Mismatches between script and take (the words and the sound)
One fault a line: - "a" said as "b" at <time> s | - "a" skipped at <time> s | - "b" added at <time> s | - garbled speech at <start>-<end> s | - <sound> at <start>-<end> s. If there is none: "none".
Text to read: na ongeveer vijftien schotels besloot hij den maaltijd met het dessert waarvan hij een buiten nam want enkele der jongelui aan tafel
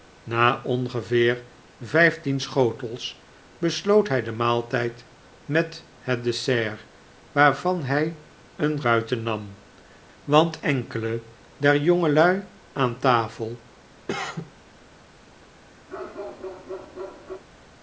- cough at 14.1-14.5 s
- bark at 15.9-17.4 s